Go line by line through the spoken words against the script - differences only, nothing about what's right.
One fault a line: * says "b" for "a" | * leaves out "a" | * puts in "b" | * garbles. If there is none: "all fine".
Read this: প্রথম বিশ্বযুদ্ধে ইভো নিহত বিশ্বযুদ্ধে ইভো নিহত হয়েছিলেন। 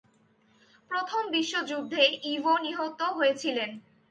* leaves out "বিশ্বযুদ্ধে ইভো নিহত"